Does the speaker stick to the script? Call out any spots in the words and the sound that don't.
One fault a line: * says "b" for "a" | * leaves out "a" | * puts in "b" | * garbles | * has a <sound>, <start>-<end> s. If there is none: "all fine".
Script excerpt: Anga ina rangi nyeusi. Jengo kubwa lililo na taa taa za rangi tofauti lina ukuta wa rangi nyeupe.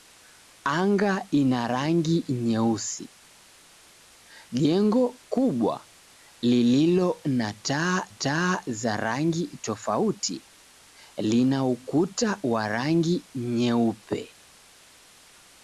all fine